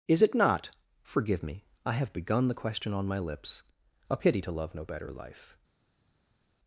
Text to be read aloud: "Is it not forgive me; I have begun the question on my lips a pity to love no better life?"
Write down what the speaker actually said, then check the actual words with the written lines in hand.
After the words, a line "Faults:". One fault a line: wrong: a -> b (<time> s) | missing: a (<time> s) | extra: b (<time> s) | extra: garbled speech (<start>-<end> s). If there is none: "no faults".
"Is it not forgive me; I have begun the question on my lips a pity to love no better life?"
Faults:
no faults